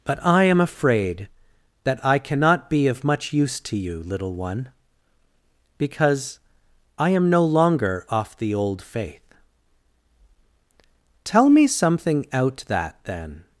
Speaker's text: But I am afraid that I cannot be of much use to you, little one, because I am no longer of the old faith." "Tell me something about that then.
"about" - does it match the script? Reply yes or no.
no